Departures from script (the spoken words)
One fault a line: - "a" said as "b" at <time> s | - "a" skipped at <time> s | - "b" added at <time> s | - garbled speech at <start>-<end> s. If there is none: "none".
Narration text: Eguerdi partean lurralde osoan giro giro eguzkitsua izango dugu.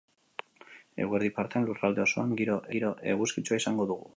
none